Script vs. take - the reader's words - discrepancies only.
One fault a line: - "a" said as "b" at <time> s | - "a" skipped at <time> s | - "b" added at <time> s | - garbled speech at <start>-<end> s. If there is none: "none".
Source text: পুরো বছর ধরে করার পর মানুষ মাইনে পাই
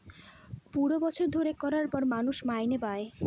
none